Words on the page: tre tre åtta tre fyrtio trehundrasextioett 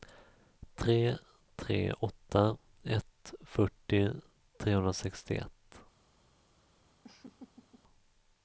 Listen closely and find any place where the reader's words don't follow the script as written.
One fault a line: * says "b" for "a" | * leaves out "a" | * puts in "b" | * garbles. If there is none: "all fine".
* says "ett" for "tre"